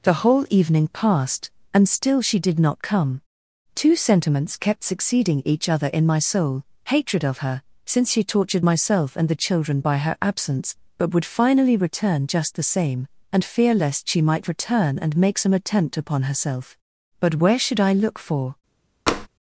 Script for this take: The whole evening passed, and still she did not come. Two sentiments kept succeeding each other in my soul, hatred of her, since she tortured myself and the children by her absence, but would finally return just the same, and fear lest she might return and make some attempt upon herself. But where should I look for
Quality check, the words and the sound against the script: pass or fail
fail